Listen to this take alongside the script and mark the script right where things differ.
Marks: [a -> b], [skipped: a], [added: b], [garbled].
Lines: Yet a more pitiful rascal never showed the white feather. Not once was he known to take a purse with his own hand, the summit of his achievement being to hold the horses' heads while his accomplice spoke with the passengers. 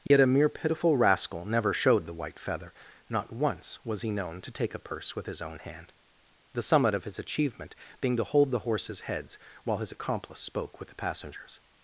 Yet a [more -> mere] pitiful rascal never showed the white feather. Not once was he known to take a purse with his own hand, the summit of his achievement being to hold the horses' heads while his accomplice spoke with the passengers.